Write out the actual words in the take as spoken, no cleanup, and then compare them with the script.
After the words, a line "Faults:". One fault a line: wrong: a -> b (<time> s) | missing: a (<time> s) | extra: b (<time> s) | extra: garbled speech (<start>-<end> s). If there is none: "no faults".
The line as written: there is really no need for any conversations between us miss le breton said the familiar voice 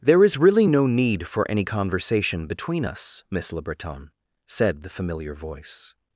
there is really no need for any conversation between us miss le breton said the familiar voice
Faults:
wrong: conversations -> conversation (1.6 s)